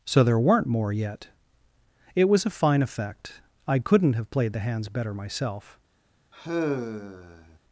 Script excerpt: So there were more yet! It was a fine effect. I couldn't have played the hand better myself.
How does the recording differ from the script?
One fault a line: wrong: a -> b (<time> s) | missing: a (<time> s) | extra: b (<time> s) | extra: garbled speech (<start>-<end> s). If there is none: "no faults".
wrong: were -> weren't (0.4 s)
wrong: hand -> hands (4.6 s)